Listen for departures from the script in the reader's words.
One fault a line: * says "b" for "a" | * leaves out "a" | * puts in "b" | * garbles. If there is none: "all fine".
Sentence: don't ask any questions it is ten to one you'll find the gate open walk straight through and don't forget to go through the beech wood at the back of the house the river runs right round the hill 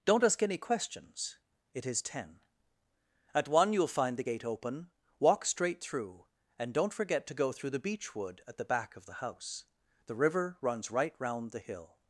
* says "at" for "to"